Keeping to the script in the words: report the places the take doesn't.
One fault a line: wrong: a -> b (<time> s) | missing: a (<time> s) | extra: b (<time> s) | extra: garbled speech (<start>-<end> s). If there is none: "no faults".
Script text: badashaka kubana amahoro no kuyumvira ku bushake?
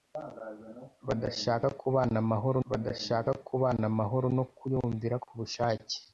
extra: badashaka kubana amahoro (2.7 s)